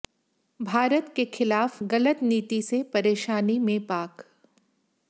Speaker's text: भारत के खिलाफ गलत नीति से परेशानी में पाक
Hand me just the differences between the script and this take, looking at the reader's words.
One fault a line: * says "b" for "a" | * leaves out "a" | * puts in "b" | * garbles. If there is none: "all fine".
all fine